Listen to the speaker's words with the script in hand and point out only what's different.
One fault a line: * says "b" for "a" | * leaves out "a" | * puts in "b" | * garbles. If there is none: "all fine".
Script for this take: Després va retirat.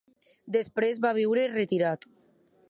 * puts in "viure"